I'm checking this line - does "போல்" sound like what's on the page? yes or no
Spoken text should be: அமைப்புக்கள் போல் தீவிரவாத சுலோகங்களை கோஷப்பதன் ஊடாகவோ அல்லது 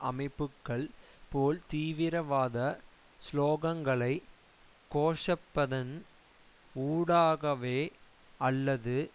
yes